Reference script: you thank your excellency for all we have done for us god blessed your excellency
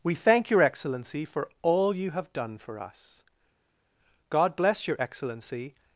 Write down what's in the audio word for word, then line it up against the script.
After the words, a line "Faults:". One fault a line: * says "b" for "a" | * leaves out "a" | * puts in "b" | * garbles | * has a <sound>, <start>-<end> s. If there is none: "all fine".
we thank your excellency for all you have done for us god bless your excellency
Faults:
* says "we" for "you"
* says "you" for "we"
* says "bless" for "blessed"